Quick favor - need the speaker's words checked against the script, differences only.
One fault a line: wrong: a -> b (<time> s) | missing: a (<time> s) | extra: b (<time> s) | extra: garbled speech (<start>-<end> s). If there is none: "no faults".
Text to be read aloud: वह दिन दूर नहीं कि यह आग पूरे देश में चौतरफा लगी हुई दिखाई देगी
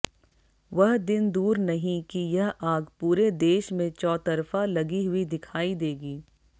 no faults